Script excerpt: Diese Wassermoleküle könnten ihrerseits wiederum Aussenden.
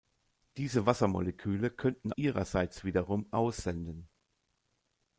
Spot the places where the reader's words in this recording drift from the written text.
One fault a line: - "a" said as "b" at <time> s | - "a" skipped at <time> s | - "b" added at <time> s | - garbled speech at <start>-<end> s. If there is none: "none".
none